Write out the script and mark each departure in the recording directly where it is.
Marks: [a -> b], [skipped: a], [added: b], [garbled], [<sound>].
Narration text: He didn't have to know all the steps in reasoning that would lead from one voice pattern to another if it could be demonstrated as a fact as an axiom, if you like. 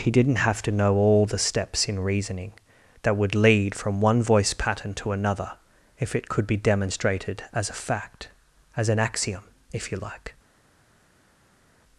He didn't have to know all the steps in reasoning that would lead from one voice pattern to another if it could be demonstrated as a fact as an axiom, if you like.